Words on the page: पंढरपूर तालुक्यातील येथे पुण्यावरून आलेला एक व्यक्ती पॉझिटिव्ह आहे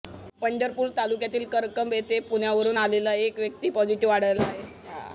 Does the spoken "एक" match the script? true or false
true